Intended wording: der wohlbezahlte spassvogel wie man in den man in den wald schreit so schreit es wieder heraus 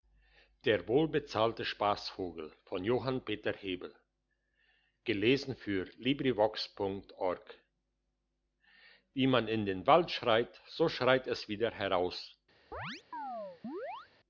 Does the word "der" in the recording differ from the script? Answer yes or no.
no